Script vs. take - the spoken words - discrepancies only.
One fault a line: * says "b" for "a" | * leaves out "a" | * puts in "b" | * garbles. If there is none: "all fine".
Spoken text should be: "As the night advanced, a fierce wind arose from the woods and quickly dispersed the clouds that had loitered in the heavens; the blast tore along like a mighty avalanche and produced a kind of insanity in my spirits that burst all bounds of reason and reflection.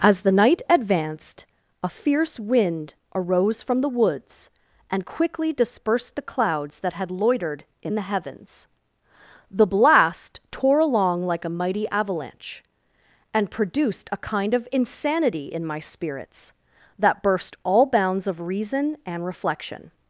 all fine